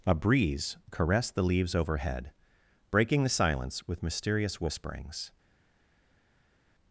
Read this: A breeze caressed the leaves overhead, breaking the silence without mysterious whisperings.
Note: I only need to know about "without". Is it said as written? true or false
false